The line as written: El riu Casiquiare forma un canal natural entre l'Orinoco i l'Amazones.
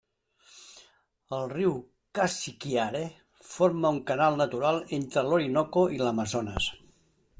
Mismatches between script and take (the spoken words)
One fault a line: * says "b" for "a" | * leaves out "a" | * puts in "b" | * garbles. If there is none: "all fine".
all fine